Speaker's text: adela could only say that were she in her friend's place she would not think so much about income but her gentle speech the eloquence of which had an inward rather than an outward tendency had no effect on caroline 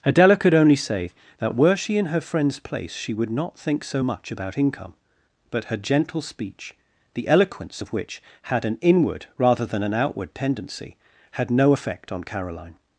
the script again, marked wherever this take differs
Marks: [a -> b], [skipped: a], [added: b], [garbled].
adela could only say that were she in her friend's place she would not think so much about income but her gentle speech the eloquence of which had an inward rather than an outward tendency had no effect on caroline